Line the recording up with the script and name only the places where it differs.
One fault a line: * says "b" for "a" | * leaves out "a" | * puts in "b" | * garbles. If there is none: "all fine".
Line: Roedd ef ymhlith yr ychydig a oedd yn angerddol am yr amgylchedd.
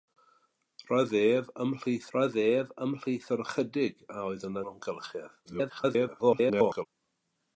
* puts in "roedd ef ymhlith"
* leaves out "angerddol am"
* garbles